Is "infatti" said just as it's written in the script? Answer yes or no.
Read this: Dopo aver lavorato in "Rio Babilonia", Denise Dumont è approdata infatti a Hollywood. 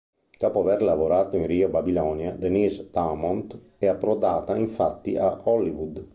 yes